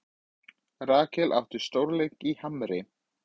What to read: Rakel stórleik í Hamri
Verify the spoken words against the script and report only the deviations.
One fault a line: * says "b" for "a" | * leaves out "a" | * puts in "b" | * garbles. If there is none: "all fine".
* puts in "átti"